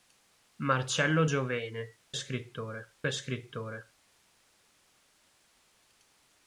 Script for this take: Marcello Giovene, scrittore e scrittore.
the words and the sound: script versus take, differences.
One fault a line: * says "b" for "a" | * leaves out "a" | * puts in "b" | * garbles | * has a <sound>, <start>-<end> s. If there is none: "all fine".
all fine